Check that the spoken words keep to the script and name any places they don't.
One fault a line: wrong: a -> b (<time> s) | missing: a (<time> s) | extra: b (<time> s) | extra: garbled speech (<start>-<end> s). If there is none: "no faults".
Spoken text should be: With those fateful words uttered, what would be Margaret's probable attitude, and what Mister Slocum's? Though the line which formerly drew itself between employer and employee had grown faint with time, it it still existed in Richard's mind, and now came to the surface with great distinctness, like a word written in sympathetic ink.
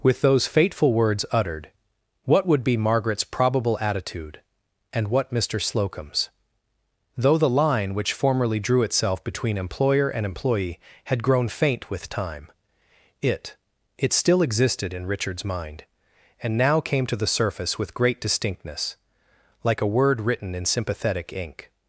no faults